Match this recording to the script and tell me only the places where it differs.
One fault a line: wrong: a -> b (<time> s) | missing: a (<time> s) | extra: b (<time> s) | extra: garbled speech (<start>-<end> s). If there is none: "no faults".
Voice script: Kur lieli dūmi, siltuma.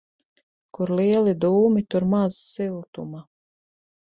extra: tur maz (1.9 s)